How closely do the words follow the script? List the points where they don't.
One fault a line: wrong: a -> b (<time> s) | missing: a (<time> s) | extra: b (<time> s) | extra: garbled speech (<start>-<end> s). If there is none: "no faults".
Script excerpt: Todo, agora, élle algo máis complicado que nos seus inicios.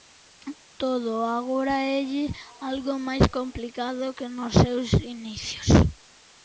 no faults